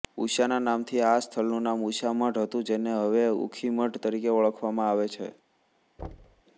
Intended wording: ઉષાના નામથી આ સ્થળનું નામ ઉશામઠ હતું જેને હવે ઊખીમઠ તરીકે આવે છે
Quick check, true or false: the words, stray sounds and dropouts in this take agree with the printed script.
false